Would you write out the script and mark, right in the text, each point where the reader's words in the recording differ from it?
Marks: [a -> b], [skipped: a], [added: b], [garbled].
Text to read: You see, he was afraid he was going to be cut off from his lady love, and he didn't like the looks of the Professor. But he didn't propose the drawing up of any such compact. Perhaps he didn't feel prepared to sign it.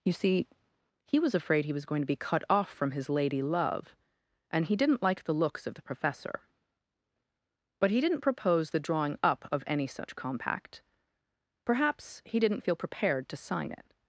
You see, he was afraid he was going to be cut off from his lady love, and he didn't like the looks of the Professor. But he didn't propose the drawing up of any such compact. Perhaps he didn't feel prepared to sign it.